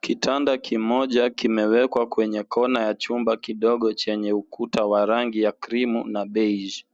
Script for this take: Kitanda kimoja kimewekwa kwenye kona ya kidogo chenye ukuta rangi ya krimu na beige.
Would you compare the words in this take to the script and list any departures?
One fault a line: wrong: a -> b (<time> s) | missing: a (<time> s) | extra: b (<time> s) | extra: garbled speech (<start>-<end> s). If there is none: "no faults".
extra: chumba (3.0 s)
extra: wa (4.8 s)